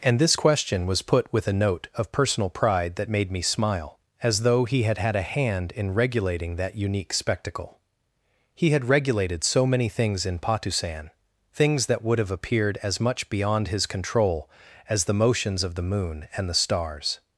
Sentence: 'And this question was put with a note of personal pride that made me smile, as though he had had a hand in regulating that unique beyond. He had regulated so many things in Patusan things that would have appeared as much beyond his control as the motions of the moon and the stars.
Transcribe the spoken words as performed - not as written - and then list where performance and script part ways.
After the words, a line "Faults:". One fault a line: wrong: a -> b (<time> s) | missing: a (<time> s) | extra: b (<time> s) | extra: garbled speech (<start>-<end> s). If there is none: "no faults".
'And this question was put with a note of personal pride that made me smile, as though he had had a hand in regulating that unique spectacle. He had regulated so many things in Patusan things that would have appeared as much beyond his control as the motions of the moon and the stars.
Faults:
wrong: beyond -> spectacle (7.1 s)